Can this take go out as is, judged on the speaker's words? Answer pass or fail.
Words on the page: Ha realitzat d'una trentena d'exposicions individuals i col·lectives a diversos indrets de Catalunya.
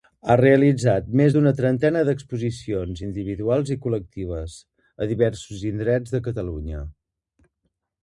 fail